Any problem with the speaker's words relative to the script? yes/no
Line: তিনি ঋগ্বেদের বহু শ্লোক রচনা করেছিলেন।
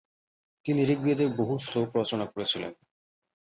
no